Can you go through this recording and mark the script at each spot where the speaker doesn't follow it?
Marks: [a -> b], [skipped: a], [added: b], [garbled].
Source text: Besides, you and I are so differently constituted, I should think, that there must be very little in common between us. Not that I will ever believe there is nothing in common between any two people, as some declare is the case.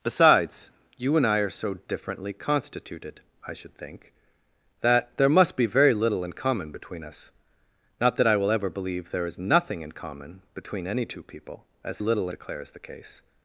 Besides, you and I are so differently constituted, I should think, that there must be very little in common between us. Not that I will ever believe there is nothing in common between any two people, as [some -> little] declare is the case.